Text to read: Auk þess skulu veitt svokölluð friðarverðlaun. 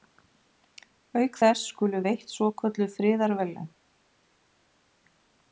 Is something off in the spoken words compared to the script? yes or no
no